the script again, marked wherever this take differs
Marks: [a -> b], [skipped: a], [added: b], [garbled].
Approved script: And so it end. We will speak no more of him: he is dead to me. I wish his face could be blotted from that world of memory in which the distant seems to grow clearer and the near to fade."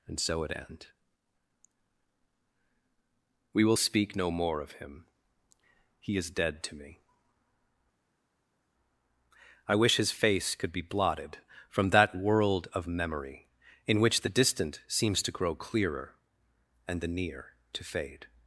And so it end. We will speak no more of him: he is dead to me. I wish his face could be blotted from that world of memory in which the distant seems to grow clearer and the near to fade."